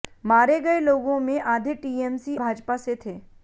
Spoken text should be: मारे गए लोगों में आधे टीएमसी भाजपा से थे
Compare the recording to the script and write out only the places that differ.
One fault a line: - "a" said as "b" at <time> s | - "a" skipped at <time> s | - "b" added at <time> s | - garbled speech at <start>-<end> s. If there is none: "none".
none